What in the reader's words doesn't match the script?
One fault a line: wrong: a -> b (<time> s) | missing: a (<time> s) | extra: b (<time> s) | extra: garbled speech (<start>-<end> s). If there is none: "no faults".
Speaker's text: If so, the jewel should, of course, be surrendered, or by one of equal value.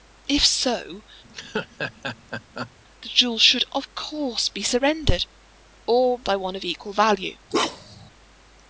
no faults